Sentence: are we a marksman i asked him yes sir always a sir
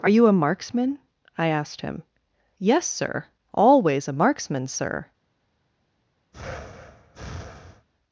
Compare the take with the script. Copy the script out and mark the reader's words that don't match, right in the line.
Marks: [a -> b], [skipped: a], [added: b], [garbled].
are [we -> you] a marksman i asked him yes sir always a [added: marksman] sir